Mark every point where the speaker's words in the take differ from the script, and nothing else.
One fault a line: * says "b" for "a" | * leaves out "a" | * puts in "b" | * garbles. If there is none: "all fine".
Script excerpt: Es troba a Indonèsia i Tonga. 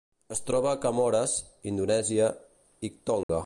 * puts in "Comores"